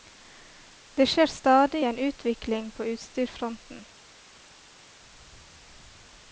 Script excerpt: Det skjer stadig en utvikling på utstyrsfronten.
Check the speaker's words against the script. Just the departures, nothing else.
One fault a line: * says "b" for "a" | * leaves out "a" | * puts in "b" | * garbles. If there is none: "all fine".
all fine